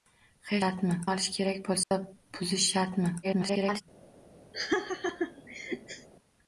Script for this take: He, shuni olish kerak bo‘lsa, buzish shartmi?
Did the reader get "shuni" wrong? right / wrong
wrong